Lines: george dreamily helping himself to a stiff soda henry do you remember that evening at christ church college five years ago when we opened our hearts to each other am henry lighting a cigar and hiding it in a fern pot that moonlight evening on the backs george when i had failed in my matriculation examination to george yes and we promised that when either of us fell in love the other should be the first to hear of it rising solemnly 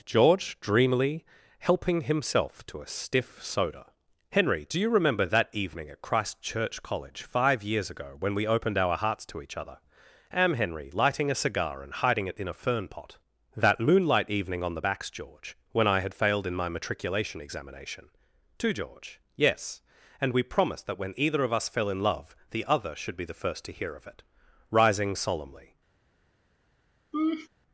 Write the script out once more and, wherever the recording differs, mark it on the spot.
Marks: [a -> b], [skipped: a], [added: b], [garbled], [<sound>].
george dreamily helping himself to a stiff soda henry do you remember that evening at christ church college five years ago when we opened our hearts to each other am henry lighting a cigar and hiding it in a fern pot that moonlight evening on the backs george when i had failed in my matriculation examination to george yes and we promised that when either of us fell in love the other should be the first to hear of it rising solemnly [laugh]